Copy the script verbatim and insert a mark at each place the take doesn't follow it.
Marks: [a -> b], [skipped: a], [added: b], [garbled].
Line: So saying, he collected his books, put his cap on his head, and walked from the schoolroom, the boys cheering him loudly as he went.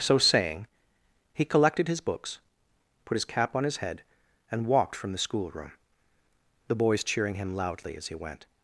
So saying, he collected his books, put his cap on his head, and walked from the schoolroom, the boys cheering him loudly as he went.